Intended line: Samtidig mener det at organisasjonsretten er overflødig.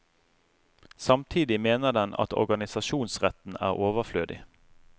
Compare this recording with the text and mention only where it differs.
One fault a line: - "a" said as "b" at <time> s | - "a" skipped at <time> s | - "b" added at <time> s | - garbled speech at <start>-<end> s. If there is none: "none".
- "det" said as "den" at 1.9 s